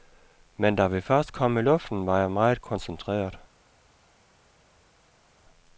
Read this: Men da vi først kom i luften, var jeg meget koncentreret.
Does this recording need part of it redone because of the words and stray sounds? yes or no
no